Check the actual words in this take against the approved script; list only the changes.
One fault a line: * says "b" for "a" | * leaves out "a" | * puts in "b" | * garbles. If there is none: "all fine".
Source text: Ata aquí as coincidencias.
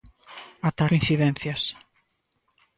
* leaves out "aquí as"